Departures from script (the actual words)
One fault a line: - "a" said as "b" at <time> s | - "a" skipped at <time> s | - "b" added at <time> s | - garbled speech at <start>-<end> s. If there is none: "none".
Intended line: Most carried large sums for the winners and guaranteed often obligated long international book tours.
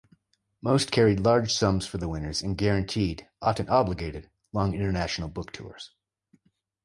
none